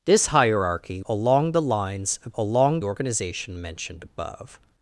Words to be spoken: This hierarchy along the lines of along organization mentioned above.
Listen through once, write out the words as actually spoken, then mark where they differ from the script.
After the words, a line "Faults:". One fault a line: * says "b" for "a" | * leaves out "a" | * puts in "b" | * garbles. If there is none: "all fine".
This hierarchy along the lines of along organization mentioned above.
Faults:
all fine